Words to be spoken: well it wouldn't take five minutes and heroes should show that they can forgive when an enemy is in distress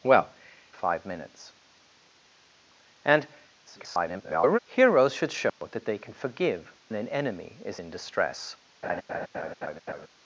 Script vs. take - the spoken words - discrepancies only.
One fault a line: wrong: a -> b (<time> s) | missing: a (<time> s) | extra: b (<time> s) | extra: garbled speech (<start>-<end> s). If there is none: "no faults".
missing: it wouldn't take (0.3 s)
extra: garbled speech (3.6-4.6 s)
missing: when (6.7 s)